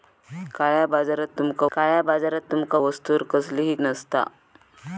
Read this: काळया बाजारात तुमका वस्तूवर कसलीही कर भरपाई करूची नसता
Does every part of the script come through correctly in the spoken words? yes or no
no